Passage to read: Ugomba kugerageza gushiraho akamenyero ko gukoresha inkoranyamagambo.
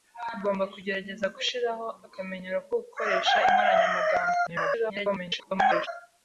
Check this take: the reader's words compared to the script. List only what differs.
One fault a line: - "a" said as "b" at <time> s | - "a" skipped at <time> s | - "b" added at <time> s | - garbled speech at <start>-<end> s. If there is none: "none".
- garbled speech at 4.5-5.9 s